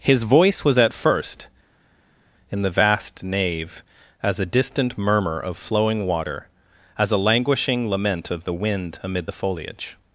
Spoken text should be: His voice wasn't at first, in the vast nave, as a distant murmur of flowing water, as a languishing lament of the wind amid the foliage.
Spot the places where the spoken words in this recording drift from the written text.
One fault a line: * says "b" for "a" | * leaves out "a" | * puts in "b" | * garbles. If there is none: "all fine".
* says "was" for "wasn't"